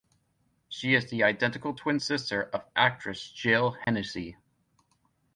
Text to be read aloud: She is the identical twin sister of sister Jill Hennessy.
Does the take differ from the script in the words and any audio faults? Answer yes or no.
yes